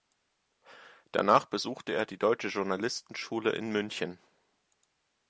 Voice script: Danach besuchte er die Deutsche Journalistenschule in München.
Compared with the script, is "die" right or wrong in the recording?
right